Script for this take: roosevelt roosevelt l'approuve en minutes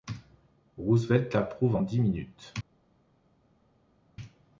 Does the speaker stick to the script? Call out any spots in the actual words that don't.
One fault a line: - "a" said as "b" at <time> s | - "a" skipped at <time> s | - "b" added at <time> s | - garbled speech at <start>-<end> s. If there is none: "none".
- "roosevelt" skipped at 1.3 s
- "dix" added at 1.8 s